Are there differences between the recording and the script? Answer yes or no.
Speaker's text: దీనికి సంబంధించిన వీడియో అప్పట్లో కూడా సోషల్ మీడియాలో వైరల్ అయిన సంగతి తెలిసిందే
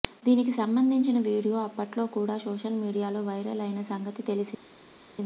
no